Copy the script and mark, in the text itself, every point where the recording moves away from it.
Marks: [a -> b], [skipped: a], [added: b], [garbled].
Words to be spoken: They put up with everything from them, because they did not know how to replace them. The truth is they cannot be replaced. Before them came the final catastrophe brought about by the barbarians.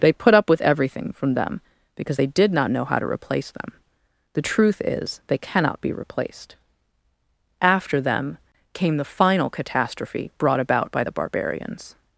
They put up with everything from them, because they did not know how to replace them. The truth is they cannot be replaced. [Before -> After] them came the final catastrophe brought about by the barbarians.